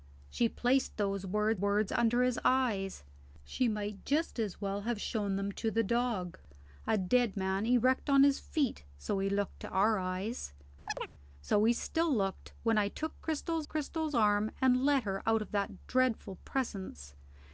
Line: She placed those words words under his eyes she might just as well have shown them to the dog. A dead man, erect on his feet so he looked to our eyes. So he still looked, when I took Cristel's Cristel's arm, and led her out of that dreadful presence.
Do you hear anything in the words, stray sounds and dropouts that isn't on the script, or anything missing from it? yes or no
yes